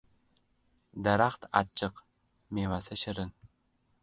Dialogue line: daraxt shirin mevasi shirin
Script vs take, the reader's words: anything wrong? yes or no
yes